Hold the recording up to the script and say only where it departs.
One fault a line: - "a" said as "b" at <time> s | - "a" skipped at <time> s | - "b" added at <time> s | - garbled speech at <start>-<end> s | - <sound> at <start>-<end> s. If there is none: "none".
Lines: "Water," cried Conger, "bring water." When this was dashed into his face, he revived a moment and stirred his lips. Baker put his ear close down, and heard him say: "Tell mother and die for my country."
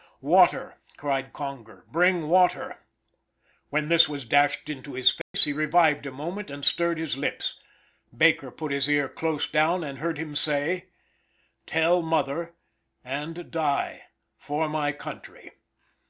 - dropout at 5.2-5.3 s